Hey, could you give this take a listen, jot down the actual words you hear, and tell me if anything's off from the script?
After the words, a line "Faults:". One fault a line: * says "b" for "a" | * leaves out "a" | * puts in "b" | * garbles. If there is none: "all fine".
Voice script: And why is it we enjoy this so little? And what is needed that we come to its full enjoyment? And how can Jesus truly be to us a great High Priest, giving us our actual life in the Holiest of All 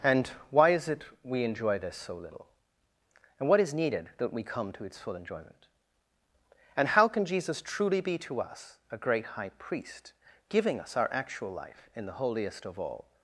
And why is it we enjoy this so little? And what is needed that we come to its full enjoyment? And how can Jesus truly be to us a great High Priest, giving us our actual life in the Holiest of All
Faults:
all fine